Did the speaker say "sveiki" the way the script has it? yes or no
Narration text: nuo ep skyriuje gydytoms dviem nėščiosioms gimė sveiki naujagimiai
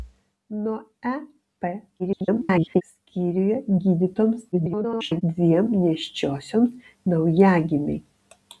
no